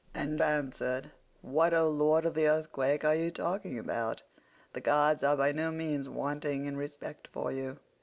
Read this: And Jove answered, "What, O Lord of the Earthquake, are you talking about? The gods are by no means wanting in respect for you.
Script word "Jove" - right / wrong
wrong